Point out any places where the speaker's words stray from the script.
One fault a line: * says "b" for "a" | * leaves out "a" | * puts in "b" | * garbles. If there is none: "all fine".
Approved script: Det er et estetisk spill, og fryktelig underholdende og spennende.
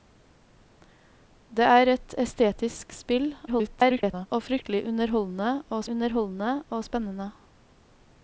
* garbles
* puts in "underholdende og"